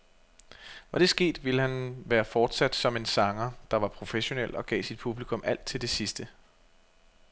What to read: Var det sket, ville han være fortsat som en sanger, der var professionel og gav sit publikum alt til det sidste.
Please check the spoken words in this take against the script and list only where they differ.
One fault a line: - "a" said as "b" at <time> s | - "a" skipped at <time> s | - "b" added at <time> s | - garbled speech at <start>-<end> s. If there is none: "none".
none